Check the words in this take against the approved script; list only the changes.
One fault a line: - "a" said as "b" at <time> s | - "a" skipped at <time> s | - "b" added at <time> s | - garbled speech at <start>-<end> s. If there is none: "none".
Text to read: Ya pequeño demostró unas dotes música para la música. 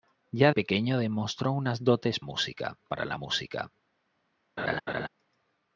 none